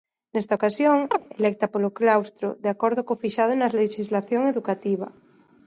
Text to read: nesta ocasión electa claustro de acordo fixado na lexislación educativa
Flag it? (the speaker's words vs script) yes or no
yes